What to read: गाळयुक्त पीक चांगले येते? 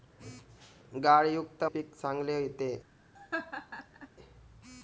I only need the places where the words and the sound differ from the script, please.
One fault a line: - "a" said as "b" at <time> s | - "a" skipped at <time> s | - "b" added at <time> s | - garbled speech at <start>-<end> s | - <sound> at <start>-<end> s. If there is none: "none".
- laugh at 3.1-4.1 s